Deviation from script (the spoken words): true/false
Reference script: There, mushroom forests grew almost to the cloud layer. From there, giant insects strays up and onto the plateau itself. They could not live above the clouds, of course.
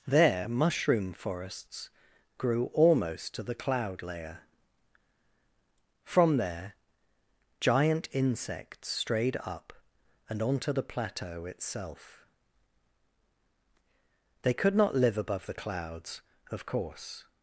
true